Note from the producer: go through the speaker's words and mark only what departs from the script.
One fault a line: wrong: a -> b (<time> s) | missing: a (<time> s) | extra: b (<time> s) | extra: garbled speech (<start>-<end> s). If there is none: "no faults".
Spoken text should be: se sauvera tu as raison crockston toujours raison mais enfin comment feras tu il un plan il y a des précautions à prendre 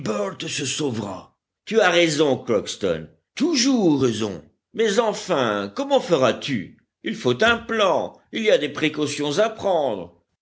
extra: faut (7.2 s)